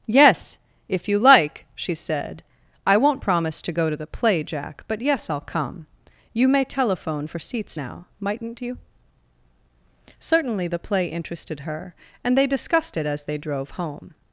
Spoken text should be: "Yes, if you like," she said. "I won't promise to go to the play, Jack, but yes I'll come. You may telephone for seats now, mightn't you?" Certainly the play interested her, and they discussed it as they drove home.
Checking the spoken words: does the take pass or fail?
pass